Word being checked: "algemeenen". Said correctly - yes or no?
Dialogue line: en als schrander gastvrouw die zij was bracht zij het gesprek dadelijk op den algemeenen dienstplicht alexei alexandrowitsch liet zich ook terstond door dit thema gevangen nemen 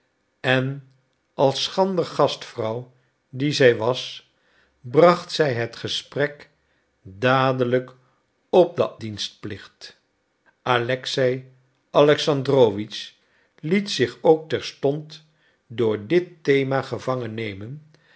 no